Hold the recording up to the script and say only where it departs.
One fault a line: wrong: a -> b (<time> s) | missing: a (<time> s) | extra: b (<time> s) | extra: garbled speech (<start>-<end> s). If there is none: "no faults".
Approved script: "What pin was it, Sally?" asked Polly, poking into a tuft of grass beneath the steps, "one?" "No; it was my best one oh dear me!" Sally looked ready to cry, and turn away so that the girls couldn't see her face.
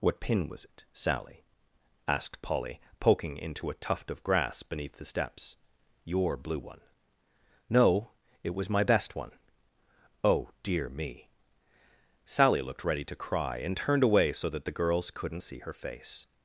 extra: your blue (6.0 s)
wrong: turn -> turned (13.8 s)